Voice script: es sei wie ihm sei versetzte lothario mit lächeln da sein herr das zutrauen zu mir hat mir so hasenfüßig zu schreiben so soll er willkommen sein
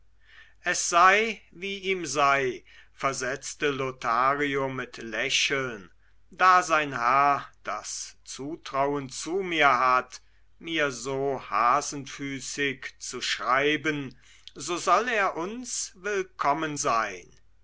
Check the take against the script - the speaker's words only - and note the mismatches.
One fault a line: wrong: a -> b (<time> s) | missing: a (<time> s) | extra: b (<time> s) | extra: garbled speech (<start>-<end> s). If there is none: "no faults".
extra: uns (15.4 s)